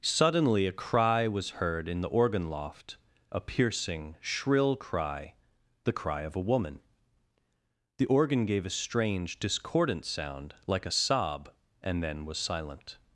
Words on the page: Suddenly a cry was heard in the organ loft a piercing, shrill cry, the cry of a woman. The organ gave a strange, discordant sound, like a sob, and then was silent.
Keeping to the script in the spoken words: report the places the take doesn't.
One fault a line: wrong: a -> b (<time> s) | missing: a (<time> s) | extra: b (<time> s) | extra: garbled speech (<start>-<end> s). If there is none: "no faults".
no faults